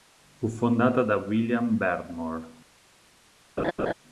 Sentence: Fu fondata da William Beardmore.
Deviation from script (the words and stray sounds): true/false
true